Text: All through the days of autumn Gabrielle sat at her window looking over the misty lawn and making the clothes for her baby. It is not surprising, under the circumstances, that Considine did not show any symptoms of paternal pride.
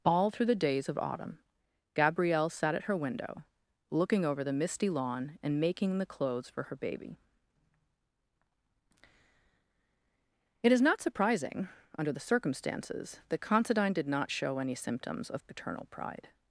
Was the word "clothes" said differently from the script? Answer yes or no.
no